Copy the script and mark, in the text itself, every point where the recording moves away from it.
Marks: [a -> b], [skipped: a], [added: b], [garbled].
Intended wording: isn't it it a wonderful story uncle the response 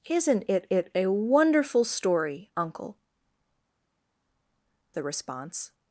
isn't it it a wonderful story uncle the response